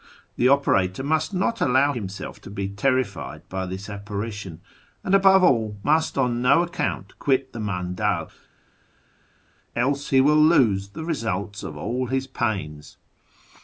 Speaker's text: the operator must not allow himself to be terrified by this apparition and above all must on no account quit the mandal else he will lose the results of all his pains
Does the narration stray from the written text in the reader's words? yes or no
no